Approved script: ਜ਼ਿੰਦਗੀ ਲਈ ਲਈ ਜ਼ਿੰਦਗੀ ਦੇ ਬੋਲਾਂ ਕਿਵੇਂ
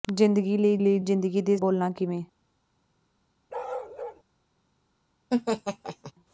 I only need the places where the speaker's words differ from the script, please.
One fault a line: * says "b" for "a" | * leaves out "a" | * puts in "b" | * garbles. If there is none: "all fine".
all fine